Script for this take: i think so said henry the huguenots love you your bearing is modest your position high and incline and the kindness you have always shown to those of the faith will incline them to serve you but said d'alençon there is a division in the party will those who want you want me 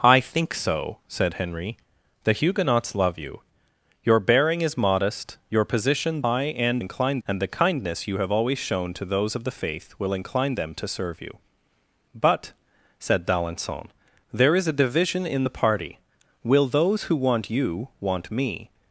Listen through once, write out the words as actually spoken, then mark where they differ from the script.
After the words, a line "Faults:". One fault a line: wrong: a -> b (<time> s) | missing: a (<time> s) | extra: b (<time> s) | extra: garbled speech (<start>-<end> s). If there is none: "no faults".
i think so said henry the huguenots love you your bearing is modest your position high and incline and the kindness you have always shown to those of the faith will incline them to serve you but said d'alençon there is a division in the party will those who want you want me
Faults:
no faults